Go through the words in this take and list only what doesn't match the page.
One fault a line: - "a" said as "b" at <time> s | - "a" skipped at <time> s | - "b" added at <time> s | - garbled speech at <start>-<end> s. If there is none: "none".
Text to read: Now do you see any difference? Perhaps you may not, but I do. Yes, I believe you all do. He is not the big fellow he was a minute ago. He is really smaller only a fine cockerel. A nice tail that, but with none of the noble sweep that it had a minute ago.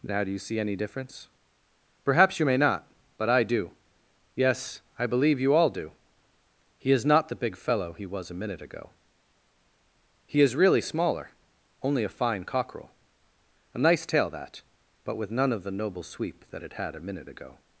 none